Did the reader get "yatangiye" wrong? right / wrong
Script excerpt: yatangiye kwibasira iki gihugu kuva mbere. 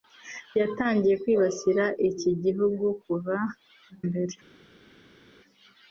right